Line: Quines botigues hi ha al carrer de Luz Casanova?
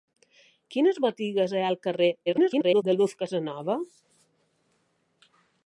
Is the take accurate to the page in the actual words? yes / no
no